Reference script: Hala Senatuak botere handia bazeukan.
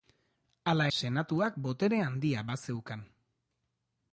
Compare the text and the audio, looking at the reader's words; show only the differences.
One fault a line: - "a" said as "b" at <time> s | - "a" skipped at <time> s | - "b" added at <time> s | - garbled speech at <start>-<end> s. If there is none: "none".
none